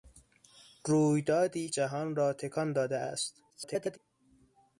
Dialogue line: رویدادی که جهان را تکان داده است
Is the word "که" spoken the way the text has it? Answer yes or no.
no